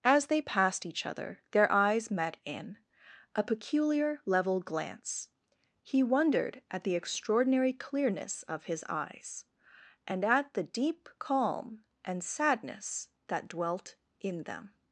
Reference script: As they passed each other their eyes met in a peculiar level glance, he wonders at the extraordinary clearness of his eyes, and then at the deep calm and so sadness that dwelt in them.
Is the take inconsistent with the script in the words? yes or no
yes